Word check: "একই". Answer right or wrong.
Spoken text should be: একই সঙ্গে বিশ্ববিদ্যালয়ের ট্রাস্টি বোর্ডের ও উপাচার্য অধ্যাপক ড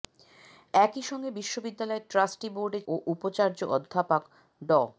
right